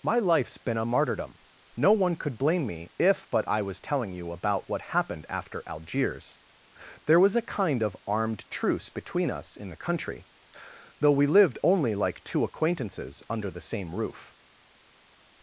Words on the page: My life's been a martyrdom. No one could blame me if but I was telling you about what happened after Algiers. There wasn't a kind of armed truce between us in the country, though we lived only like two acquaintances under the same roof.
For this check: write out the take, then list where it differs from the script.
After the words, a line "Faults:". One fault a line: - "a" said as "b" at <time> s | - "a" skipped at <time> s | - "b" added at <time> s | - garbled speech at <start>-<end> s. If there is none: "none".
My life's been a martyrdom. No one could blame me if but I was telling you about what happened after Algiers. There was a kind of armed truce between us in the country, though we lived only like two acquaintances under the same roof.
Faults:
- "wasn't" said as "was" at 7.2 s